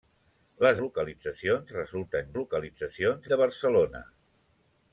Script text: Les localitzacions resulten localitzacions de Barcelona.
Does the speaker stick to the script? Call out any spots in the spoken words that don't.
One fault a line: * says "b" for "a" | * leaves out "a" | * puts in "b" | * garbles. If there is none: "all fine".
all fine